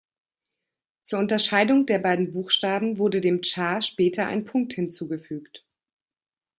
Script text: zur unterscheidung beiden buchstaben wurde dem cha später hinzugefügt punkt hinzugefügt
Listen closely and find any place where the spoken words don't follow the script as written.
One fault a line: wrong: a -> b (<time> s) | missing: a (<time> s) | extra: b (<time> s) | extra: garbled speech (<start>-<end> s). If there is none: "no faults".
extra: der (1.9 s)
wrong: hinzugefügt -> ein (4.2 s)